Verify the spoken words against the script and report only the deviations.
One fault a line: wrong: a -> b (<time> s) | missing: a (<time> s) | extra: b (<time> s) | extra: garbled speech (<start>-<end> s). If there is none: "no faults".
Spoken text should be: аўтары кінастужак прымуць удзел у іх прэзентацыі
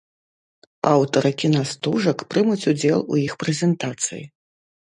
no faults